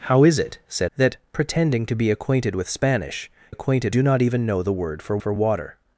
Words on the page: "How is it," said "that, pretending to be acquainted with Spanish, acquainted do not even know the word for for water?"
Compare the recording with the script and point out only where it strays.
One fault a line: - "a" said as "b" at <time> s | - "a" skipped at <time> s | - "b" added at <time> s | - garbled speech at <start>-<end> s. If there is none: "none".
none